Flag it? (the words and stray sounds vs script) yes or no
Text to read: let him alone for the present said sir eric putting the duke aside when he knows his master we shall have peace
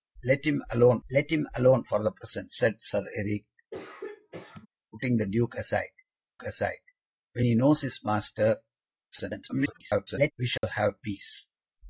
yes